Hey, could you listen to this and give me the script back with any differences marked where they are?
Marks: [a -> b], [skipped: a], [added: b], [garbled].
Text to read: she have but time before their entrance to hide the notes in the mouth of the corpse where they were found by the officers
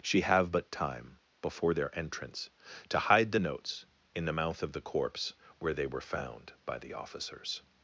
she have but time before their entrance to hide the notes in the mouth of the corpse where they were found by the officers